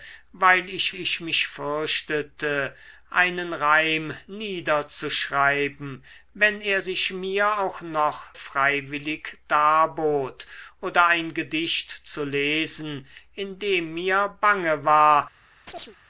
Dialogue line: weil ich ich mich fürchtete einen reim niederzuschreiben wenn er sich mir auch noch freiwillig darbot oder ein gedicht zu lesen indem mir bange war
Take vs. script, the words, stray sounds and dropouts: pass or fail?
fail